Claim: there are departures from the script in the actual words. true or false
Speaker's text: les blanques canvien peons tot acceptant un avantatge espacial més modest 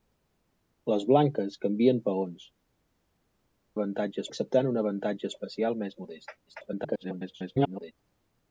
true